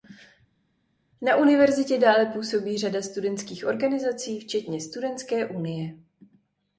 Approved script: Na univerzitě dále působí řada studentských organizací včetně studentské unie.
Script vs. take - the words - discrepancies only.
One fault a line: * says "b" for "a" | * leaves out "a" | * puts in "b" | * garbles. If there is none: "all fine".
all fine